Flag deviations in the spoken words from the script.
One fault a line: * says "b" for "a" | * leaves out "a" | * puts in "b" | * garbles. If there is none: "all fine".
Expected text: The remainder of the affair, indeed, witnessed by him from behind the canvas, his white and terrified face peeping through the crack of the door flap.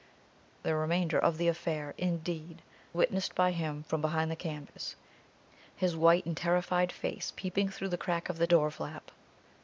all fine